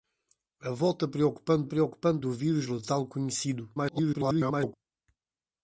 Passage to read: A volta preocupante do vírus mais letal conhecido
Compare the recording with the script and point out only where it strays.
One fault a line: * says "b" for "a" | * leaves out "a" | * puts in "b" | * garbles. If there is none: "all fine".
* puts in "preocupante"
* leaves out "mais"
* garbles